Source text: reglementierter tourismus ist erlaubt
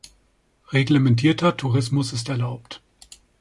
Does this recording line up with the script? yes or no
yes